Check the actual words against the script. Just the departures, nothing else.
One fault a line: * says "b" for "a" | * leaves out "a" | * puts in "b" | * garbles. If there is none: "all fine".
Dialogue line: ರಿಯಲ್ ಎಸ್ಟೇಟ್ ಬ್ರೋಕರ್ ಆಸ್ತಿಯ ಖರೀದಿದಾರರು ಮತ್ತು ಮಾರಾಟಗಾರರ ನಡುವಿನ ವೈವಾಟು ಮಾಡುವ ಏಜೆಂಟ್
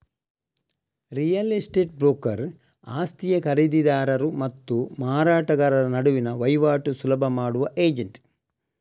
* puts in "ಸುಲಭ"